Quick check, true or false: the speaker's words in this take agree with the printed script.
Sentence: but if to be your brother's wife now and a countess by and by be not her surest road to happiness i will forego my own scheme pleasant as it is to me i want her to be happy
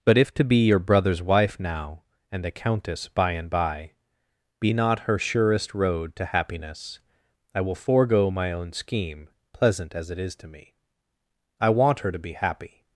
true